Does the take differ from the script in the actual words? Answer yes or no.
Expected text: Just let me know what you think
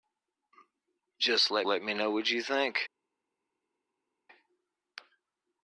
yes